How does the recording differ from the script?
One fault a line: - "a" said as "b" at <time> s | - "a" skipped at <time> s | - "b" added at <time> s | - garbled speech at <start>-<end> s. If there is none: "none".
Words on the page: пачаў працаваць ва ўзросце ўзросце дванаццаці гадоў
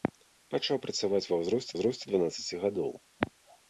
none